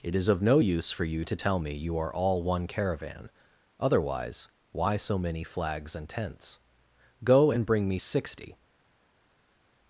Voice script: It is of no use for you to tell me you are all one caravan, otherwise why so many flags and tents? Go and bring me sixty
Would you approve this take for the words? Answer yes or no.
yes